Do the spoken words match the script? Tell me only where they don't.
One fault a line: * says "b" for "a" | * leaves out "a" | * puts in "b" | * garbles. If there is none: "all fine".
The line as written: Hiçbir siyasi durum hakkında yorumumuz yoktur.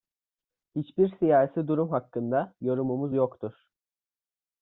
all fine